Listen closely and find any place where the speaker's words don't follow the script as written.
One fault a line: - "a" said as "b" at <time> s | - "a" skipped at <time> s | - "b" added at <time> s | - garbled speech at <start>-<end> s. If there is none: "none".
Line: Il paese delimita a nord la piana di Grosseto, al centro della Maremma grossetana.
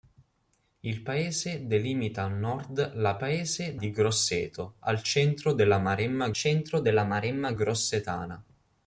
- "piana" said as "paese" at 3.2 s
- "centro della Maremma" added at 6.3 s